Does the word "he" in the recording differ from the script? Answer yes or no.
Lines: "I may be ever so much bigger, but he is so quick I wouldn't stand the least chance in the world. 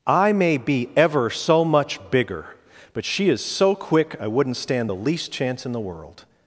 yes